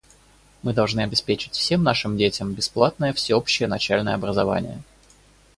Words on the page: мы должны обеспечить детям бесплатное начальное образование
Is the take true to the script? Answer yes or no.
no